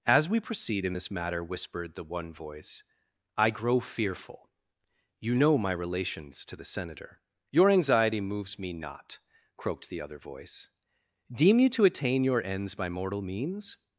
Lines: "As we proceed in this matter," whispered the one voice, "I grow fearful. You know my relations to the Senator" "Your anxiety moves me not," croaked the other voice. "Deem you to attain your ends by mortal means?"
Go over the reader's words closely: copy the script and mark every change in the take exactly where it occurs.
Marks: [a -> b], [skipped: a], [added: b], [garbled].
"As we proceed in this matter," whispered the one voice, "I grow fearful. You know my relations to the Senator" "Your anxiety moves me not," croaked the other voice. "Deem you to attain your ends by mortal means?"